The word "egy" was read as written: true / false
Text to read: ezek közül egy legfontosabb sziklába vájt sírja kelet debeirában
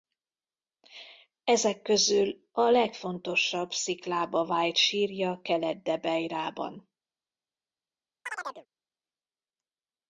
false